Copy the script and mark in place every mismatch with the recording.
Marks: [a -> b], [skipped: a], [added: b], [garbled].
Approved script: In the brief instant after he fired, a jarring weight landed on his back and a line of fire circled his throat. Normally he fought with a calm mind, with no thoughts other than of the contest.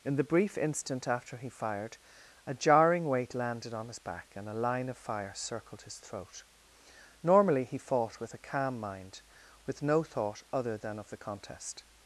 In the brief instant after he fired, a jarring weight landed on his back and a line of fire circled his throat. Normally he fought with a calm mind, with no [thoughts -> thought] other than of the contest.